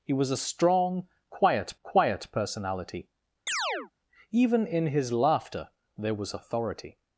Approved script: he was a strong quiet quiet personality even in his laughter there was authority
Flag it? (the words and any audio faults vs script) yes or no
yes